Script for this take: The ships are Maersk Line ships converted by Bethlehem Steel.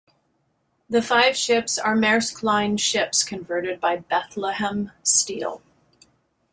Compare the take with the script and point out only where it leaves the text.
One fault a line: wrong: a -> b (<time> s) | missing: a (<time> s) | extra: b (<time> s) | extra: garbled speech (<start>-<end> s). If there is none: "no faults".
extra: five (1.0 s)